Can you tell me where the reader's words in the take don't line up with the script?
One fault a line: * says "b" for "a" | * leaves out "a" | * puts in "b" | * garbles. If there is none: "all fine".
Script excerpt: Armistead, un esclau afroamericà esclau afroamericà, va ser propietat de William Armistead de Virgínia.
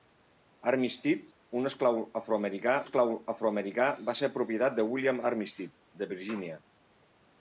all fine